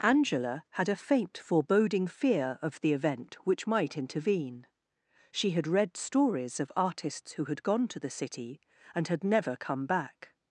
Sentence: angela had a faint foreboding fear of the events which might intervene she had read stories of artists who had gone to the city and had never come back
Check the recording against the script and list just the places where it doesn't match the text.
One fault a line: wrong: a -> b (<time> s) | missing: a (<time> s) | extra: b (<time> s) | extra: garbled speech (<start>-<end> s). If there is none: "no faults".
wrong: events -> event (2.9 s)